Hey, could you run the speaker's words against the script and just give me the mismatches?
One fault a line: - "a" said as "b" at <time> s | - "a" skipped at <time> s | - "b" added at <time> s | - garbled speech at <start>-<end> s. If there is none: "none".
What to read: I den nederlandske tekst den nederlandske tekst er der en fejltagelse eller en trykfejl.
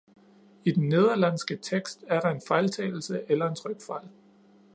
- "den nederlandske tekst" skipped at 2.0 s